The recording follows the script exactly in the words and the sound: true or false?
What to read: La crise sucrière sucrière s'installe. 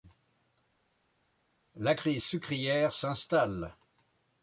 false